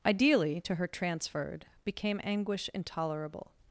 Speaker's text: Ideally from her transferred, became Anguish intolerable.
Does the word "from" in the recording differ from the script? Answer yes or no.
yes